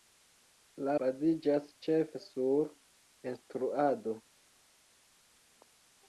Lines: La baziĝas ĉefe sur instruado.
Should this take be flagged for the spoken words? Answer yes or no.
no